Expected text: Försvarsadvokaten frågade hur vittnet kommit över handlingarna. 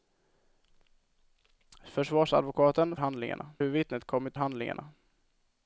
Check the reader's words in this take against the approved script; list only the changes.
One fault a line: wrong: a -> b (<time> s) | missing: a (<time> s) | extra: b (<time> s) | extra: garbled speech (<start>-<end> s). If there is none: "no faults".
wrong: frågade -> handlingarna (3.0 s)
missing: över (4.4 s)